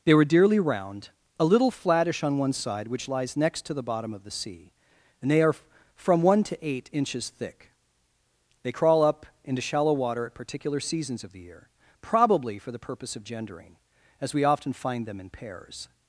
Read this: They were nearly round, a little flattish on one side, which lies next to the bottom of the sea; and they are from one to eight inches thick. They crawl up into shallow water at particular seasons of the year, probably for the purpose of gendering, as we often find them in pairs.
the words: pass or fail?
fail